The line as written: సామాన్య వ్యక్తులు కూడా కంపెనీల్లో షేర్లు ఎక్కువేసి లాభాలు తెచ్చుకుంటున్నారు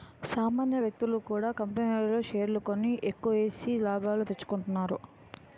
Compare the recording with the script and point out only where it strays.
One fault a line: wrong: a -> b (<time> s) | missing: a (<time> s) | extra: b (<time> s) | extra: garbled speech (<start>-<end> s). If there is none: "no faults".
extra: కొని (2.7 s)